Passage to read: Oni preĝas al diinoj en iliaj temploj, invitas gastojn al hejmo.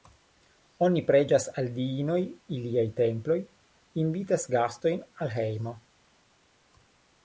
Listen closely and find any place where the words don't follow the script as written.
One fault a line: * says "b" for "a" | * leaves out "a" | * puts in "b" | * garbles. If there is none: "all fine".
* leaves out "en"